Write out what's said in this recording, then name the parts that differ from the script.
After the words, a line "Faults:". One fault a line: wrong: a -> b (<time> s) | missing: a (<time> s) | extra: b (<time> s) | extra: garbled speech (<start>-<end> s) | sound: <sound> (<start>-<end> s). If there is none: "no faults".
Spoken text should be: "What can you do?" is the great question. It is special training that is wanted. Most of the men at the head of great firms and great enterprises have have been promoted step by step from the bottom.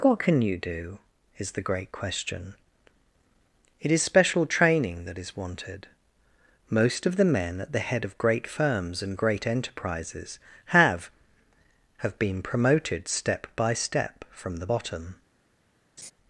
"What can you do?" is the great question. It is special training that is wanted. Most of the men at the head of great firms and great enterprises have have been promoted step by step from the bottom.
Faults:
sound: laugh (16.0-16.1 s)